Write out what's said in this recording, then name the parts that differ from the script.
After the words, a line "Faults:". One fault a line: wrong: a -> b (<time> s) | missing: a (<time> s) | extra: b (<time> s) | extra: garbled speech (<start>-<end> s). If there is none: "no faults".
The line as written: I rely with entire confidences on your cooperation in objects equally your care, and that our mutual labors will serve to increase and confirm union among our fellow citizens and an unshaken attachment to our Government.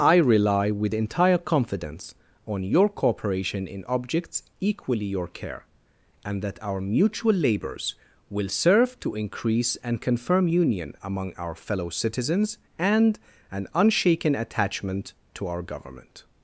I rely with entire confidence on your cooperation in objects equally your care, and that our mutual labors will serve to increase and confirm union among our fellow citizens and an unshaken attachment to our Government.
Faults:
wrong: confidences -> confidence (1.4 s)